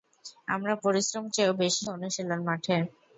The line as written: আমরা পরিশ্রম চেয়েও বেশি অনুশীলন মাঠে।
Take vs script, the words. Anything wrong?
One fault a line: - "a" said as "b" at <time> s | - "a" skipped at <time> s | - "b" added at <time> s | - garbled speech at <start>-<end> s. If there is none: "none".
none